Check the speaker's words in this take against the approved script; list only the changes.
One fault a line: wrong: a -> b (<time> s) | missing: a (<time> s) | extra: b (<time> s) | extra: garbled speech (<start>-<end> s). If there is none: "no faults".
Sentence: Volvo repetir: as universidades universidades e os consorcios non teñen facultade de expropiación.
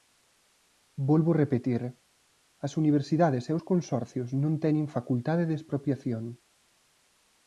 missing: universidades (3.4 s)